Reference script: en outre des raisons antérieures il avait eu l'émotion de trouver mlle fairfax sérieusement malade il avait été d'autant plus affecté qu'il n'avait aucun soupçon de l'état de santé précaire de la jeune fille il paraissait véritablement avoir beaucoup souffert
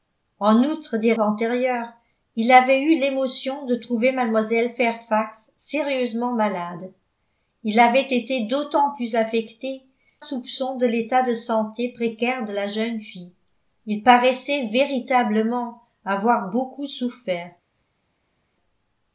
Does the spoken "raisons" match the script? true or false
false